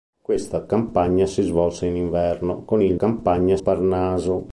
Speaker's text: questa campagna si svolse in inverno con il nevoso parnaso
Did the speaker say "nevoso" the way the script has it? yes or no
no